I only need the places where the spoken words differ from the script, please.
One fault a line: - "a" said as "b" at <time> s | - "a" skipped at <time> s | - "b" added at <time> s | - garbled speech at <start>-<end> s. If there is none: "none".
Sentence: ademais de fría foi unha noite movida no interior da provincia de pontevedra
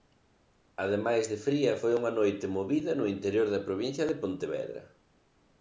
none